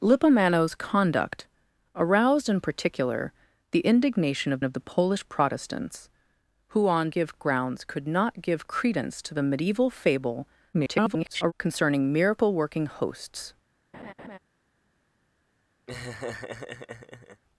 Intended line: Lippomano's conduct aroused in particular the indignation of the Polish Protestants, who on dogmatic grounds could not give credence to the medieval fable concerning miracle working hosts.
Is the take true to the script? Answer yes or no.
no